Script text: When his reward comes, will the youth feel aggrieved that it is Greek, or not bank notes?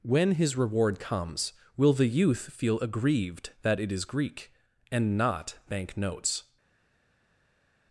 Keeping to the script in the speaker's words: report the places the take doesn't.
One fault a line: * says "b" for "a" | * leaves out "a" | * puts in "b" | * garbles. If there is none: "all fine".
* says "and" for "or"